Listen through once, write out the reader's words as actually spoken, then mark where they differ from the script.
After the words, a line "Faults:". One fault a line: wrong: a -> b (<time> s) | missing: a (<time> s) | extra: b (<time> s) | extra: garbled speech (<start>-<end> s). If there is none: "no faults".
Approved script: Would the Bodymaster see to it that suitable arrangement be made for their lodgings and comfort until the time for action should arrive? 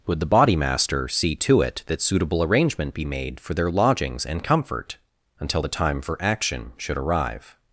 Would the Bodymaster see to it that suitable arrangement be made for their lodgings and comfort until the time for action should arrive?
Faults:
no faults